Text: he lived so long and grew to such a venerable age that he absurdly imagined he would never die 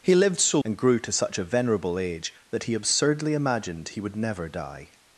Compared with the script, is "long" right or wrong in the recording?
wrong